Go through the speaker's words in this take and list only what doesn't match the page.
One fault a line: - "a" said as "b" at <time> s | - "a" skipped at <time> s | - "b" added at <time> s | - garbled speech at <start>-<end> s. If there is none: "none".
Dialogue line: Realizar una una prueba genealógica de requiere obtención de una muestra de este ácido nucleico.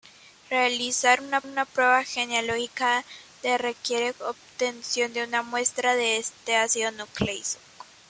none